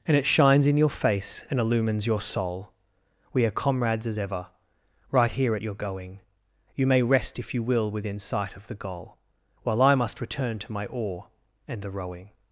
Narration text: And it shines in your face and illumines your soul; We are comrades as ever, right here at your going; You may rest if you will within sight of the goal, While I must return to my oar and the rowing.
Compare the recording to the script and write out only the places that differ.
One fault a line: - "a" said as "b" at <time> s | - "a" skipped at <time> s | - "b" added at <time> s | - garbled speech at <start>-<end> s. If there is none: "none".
none